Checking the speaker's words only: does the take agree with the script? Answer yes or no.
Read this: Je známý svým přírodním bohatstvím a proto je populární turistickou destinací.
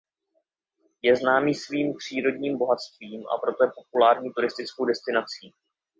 yes